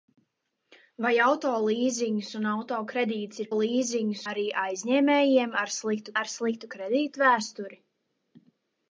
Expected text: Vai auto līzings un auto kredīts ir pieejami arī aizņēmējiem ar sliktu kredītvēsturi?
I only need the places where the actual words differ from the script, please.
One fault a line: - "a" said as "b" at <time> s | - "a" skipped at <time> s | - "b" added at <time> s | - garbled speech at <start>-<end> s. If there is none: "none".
- "pieejami" said as "līzings" at 3.6 s
- "ar sliktu" added at 6.2 s